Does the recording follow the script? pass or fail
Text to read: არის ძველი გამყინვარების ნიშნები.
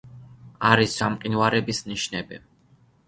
fail